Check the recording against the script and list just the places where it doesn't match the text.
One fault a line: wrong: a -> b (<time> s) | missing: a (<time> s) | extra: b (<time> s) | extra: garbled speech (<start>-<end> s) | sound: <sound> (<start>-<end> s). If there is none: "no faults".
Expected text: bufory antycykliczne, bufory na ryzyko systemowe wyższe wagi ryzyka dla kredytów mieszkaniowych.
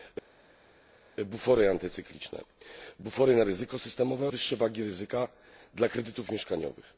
no faults